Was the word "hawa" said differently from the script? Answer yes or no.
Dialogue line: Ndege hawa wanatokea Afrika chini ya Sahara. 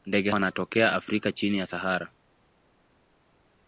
yes